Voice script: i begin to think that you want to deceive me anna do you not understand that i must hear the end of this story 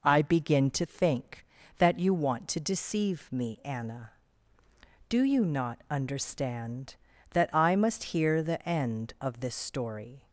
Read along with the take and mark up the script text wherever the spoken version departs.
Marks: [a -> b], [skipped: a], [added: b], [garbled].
i begin to think that you want to deceive me anna do you not understand that i must hear the end of this story